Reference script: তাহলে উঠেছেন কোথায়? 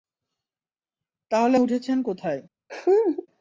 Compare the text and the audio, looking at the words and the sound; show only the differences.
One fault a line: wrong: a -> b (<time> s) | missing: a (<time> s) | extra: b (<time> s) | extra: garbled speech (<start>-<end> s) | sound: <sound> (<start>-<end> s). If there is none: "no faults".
sound: laugh (2.7-3.3 s)